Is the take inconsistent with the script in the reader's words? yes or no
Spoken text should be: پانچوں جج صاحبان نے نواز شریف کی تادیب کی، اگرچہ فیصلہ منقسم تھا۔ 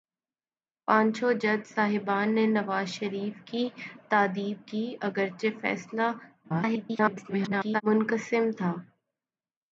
yes